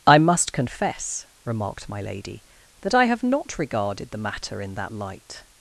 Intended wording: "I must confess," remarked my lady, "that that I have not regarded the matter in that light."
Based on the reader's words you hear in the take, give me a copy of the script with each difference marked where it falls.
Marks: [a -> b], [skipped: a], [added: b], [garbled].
"I must confess," remarked my lady, "that [skipped: that] I have not regarded the matter in that light."